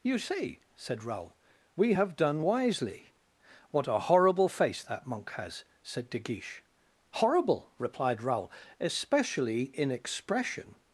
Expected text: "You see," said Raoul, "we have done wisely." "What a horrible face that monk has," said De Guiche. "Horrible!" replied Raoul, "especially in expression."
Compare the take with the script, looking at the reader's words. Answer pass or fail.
pass